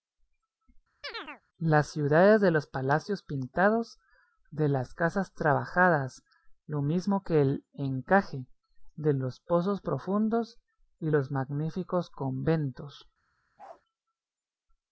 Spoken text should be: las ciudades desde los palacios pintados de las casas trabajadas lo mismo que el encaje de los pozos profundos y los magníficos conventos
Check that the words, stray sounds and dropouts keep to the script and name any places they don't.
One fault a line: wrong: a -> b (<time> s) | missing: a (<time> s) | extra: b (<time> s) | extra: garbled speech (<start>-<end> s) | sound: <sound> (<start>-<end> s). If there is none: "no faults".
sound: chirp (1.0-1.4 s)
wrong: desde -> de (2.4 s)
sound: bark (13.6-13.8 s)